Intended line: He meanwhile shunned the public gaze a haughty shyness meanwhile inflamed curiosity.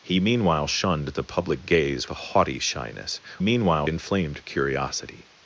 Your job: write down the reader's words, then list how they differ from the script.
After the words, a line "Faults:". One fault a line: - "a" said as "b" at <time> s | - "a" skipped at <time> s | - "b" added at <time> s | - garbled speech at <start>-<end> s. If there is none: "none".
He meanwhile shunned the public gaze a haughty shyness meanwhile inflamed curiosity.
Faults:
none